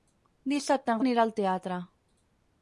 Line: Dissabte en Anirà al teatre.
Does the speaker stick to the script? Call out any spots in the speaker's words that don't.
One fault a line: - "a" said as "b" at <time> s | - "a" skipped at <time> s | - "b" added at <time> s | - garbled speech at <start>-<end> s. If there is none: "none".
none